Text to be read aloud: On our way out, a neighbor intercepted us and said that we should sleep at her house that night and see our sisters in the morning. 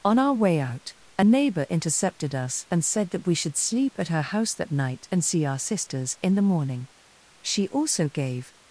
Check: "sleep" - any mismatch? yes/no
no